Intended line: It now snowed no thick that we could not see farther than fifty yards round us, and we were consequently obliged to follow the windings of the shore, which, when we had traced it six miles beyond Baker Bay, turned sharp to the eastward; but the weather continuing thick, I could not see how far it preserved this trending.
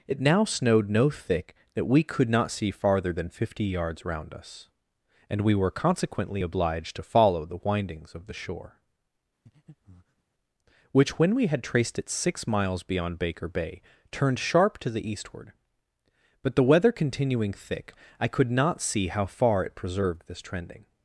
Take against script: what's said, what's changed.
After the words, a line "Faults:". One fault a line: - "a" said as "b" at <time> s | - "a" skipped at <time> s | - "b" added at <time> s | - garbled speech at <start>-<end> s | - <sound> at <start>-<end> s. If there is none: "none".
It now snowed no thick that we could not see farther than fifty yards round us, and we were consequently obliged to follow the windings of the shore, which, when we had traced it six miles beyond Baker Bay, turned sharp to the eastward; but the weather continuing thick, I could not see how far it preserved this trending.
Faults:
- breath at 9.5-10.2 s